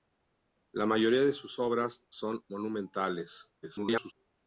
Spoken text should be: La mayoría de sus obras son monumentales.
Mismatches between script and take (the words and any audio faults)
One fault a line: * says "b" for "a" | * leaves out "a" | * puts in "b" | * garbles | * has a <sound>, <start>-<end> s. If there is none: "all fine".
* garbles